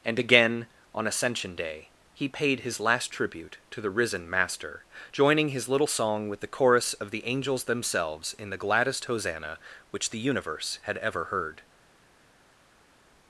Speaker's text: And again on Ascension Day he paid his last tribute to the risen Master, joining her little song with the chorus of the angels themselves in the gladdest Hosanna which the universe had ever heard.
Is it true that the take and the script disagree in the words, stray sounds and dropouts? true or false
true